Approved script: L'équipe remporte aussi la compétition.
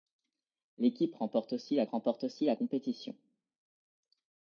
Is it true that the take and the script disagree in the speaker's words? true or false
true